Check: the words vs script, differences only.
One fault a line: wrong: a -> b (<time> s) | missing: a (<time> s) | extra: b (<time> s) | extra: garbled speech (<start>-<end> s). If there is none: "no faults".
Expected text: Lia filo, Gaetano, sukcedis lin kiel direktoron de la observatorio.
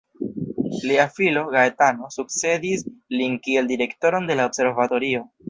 no faults